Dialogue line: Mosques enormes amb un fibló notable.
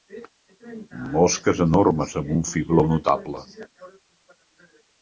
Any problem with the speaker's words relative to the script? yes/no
no